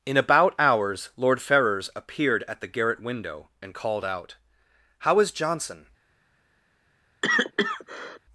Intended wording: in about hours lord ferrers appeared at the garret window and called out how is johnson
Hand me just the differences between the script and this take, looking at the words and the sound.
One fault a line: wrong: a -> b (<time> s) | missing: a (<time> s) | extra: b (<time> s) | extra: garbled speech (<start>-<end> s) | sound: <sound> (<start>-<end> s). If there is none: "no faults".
sound: cough (7.2-8.2 s)